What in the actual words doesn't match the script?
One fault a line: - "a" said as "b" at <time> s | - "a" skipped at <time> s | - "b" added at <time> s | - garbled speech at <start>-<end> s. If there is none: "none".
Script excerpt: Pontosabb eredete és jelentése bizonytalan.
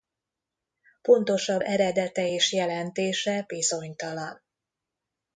none